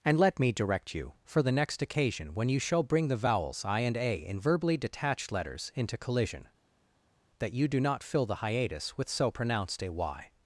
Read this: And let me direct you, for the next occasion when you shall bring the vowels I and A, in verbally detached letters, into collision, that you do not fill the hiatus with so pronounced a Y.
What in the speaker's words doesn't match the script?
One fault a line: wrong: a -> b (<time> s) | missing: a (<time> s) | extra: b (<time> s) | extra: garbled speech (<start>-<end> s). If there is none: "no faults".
no faults